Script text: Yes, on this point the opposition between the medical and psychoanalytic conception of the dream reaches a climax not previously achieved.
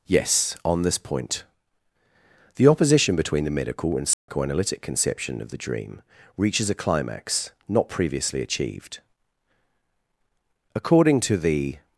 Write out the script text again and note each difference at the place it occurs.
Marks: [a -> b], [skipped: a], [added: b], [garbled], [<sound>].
Yes, on this point the opposition between the medical and psychoanalytic [dropout] conception of the dream reaches a climax not previously achieved. [added: According to the]